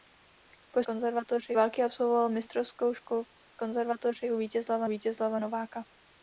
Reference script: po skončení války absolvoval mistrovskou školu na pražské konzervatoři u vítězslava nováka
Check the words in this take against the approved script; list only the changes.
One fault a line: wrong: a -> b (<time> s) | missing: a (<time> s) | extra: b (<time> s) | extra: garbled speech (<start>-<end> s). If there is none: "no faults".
wrong: skončení -> konzervatoři (0.8 s)
missing: na pražské (3.2 s)
extra: vítězslava (4.9 s)